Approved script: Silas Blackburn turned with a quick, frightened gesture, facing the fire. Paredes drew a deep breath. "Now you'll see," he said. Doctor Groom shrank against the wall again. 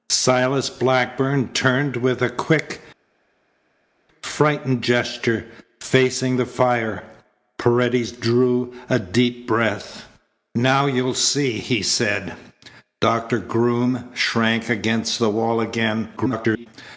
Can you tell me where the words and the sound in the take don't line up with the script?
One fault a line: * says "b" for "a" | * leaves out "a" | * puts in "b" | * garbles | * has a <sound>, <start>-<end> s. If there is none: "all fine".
* garbles